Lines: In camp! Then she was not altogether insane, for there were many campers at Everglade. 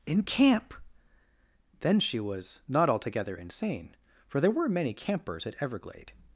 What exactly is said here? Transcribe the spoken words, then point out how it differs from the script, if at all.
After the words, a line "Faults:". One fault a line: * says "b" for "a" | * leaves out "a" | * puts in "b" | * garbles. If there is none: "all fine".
In camp! Then she was not altogether insane, for there were many campers at Everglade.
Faults:
all fine